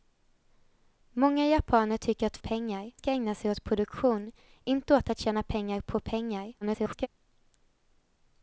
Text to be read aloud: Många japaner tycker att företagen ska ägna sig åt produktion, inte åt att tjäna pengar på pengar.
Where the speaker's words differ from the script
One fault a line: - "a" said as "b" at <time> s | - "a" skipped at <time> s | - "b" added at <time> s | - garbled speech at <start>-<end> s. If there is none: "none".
- "företagen" said as "pengar" at 2.4 s
- garbled speech at 6.6-7.1 s